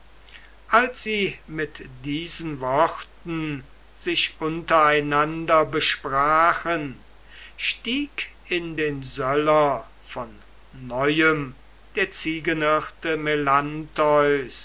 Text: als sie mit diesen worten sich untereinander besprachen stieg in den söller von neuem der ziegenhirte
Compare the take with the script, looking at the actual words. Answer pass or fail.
pass